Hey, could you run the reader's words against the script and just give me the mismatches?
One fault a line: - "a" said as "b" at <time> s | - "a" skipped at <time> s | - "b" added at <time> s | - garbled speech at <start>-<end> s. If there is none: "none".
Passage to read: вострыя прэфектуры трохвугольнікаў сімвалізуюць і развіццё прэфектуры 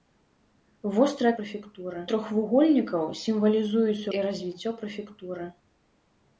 none